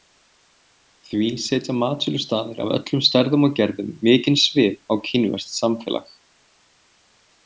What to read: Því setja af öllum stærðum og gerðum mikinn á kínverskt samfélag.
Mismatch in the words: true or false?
true